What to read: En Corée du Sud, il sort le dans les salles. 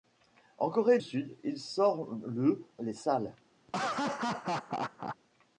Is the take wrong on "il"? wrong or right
right